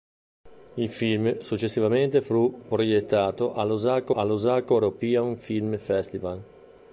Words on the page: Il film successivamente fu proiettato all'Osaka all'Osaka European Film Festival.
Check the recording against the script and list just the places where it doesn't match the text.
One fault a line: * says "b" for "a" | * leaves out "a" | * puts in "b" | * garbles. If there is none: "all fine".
all fine